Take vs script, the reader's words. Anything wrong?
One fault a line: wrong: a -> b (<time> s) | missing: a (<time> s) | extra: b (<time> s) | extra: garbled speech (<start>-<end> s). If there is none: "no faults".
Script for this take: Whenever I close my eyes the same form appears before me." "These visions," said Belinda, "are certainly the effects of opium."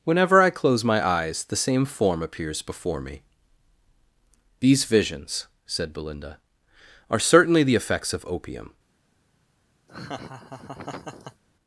no faults